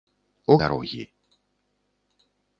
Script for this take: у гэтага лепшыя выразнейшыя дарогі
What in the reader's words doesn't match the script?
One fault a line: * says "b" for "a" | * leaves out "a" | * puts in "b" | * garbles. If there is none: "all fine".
* leaves out "гэтага лепшыя выразнейшыя"